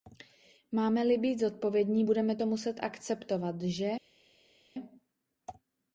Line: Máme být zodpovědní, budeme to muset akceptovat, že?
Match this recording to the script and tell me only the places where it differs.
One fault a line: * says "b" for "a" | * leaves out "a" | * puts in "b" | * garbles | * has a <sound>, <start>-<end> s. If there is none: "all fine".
* puts in "li"